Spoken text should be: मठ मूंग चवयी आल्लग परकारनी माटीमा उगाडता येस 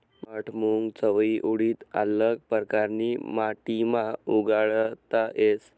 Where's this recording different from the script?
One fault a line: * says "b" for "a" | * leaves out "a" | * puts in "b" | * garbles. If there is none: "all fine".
* puts in "उडीद"